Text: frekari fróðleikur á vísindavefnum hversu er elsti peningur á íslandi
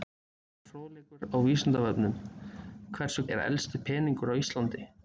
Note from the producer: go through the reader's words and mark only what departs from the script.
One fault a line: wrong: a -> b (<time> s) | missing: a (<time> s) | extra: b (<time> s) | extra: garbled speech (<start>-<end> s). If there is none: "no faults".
no faults